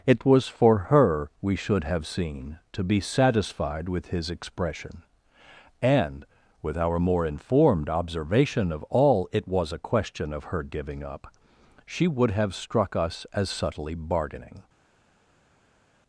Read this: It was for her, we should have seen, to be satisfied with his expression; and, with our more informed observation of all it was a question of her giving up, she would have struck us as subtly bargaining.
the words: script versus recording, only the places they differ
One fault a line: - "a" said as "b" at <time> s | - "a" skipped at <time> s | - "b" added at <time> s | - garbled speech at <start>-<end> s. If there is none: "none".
none